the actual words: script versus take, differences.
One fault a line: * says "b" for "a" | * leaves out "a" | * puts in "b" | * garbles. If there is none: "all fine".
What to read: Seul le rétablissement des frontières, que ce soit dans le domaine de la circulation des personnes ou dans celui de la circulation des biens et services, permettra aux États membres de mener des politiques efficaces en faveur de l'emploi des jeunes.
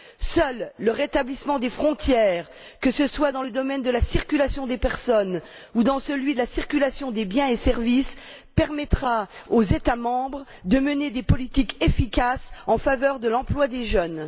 all fine